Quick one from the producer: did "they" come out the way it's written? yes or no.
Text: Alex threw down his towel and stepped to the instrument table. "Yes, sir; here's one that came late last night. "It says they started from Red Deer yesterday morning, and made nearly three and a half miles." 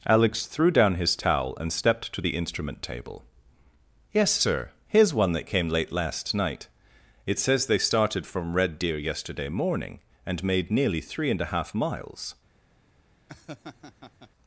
yes